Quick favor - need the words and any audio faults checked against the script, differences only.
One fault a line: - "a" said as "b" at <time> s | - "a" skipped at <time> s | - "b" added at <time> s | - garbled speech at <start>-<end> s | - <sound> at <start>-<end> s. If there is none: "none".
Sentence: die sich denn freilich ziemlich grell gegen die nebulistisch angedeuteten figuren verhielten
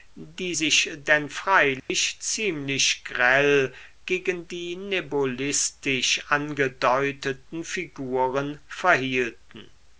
- dropout at 1.8-1.9 s